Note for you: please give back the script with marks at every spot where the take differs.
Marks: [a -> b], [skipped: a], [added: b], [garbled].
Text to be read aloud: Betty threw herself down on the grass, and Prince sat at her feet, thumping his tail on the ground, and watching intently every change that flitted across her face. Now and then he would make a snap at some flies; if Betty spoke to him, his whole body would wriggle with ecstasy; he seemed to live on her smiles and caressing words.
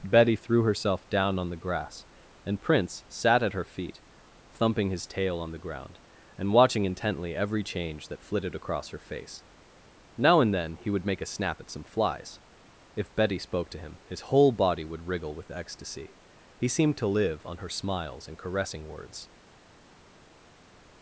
Betty threw herself down on the grass, and Prince sat at her feet, thumping his tail on the ground, and watching intently every change that flitted across her face. Now and then he would make a snap at some flies; if Betty spoke to him, his whole body would wriggle with ecstasy; he seemed to live on her smiles and caressing words.